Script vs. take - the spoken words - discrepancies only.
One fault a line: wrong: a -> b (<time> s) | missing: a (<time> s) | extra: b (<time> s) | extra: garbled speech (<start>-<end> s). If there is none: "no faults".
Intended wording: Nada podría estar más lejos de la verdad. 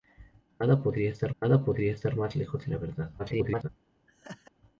extra: nada podría estar (1.4 s)
extra: garbled speech (3.2-3.7 s)